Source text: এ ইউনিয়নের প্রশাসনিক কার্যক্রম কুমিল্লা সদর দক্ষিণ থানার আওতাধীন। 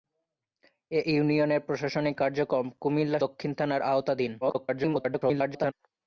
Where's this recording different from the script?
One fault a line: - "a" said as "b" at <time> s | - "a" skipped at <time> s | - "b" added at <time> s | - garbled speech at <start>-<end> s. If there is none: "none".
- "সদর" skipped at 3.2 s
- garbled speech at 4.4-5.7 s